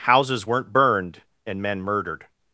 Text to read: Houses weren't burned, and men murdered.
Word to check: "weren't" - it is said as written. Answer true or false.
true